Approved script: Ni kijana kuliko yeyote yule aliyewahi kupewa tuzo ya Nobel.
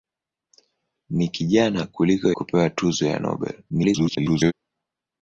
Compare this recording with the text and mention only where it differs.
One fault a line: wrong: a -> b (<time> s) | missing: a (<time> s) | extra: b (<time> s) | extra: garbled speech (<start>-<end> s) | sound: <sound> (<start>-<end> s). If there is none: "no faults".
missing: yeyote yule aliyewahi (2.3 s)
extra: garbled speech (3.7-4.5 s)